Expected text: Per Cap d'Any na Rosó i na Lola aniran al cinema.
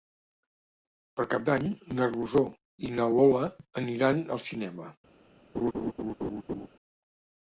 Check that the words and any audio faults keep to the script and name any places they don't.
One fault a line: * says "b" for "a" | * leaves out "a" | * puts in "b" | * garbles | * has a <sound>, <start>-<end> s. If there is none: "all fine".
* has a laugh, 5.5-6.7 s